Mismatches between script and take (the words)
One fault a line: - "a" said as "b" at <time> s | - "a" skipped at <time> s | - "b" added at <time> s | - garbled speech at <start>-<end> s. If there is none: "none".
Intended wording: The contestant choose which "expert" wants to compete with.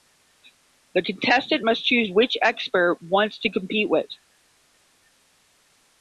- "must" added at 1.6 s